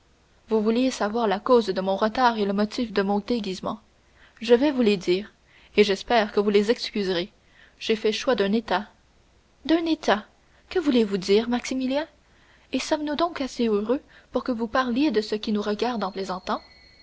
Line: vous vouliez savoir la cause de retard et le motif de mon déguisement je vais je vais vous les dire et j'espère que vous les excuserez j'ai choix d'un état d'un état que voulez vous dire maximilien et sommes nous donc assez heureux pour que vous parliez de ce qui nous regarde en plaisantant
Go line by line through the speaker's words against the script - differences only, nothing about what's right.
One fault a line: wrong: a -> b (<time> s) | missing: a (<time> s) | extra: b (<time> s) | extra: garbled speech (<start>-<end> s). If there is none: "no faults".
extra: mon (1.8 s)
missing: je vais (4.7 s)
extra: fait (8.0 s)